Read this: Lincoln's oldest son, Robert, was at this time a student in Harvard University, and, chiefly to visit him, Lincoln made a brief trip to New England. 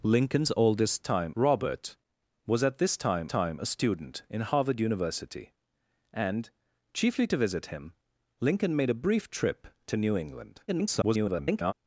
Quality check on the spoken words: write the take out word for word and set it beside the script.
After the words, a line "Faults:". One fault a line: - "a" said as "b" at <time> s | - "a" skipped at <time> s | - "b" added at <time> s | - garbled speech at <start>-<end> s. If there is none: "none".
Lincoln's oldest time, Robert, was at this time time a student in Harvard University, and, chiefly to visit him, Lincoln made a brief trip to New England. [garbled]
Faults:
- "son" said as "time" at 1.0 s
- "time" added at 3.3 s
- garbled speech at 10.7-11.7 s